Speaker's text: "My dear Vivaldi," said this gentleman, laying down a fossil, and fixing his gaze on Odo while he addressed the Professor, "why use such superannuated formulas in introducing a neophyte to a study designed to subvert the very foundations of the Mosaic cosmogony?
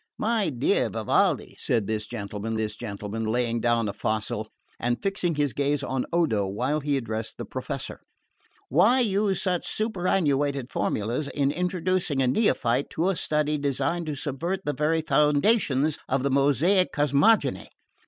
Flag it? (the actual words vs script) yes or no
yes